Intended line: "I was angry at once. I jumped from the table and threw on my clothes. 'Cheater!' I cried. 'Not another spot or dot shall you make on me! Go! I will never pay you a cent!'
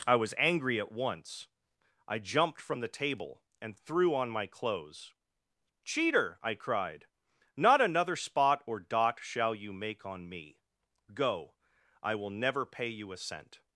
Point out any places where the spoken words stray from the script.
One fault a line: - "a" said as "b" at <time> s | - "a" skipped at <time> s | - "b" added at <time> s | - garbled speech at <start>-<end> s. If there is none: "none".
none